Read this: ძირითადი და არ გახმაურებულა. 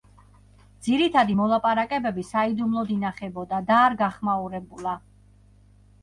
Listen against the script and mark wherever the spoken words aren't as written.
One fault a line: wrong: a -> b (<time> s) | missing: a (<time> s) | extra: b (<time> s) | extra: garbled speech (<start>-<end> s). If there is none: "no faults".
extra: მოლაპარაკებები საიდუმლოდ ინახებოდა (1.4 s)